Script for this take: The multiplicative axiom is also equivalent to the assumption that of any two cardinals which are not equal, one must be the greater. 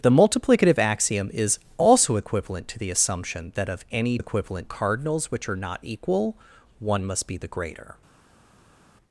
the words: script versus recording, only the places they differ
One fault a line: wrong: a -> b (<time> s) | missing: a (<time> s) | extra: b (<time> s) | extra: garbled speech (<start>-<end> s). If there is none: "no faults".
wrong: two -> equivalent (4.2 s)